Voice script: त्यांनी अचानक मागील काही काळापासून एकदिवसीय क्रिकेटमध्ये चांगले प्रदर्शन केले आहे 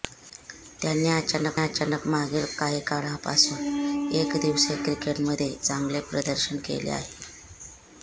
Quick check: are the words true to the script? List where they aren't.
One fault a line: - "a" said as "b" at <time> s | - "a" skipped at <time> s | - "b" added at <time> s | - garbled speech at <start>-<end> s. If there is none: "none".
- "अचानक" added at 1.6 s